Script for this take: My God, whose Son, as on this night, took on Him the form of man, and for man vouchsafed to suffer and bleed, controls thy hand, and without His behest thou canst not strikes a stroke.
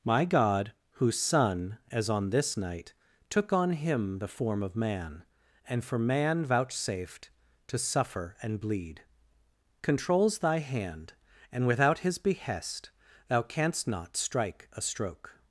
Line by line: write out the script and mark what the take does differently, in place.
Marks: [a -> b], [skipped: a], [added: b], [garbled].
My God, whose Son, as on this night, took on Him the form of man, and for man vouchsafed to suffer and bleed, controls thy hand, and without His behest thou canst not [strikes -> strike] a stroke.